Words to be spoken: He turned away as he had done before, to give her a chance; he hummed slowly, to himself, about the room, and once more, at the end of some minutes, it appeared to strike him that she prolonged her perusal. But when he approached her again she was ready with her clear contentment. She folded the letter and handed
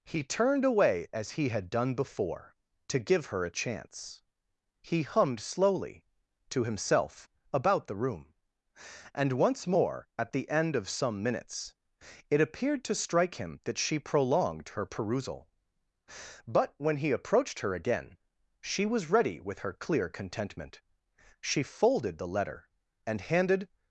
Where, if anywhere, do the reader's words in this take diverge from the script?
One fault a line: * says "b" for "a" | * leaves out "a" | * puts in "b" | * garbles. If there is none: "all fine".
all fine